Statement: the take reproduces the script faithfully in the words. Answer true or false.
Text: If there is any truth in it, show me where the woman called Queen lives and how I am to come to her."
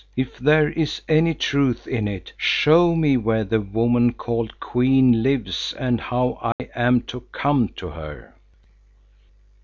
true